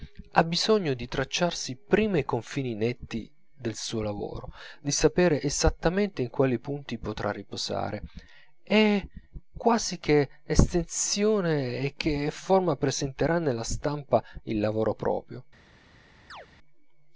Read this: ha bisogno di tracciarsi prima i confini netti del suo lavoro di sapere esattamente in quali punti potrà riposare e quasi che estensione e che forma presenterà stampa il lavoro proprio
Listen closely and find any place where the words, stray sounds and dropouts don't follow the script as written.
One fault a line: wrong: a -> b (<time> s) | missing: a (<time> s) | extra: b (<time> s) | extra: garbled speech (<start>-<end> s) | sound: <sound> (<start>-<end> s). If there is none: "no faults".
extra: nella (13.4 s)
sound: chirp (16.3-16.5 s)